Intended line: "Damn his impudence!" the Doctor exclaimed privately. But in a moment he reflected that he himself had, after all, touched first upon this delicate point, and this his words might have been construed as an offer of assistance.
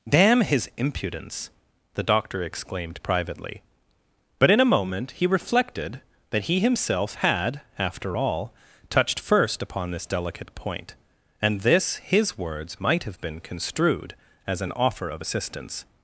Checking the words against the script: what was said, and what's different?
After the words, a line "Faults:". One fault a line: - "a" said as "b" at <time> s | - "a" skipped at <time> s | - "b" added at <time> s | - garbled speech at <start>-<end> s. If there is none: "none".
"Damn his impudence!" the Doctor exclaimed privately. But in a moment he reflected that he himself had, after all, touched first upon this delicate point, and this his words might have been construed as an offer of assistance.
Faults:
none